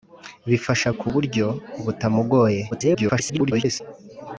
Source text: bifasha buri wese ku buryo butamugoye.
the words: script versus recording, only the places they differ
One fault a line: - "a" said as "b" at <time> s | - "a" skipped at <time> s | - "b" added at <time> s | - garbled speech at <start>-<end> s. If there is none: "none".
- "buri wese" skipped at 0.9 s
- garbled speech at 2.7-3.8 s